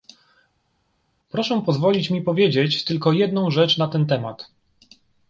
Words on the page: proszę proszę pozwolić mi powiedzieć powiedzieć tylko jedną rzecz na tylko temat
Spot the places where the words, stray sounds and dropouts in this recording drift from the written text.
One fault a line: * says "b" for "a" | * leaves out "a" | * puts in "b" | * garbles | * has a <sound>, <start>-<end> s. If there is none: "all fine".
* leaves out "proszę"
* leaves out "powiedzieć"
* says "ten" for "tylko"